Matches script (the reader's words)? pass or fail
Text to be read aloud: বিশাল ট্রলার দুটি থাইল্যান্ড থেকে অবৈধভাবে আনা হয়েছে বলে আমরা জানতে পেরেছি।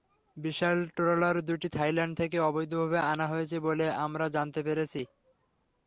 pass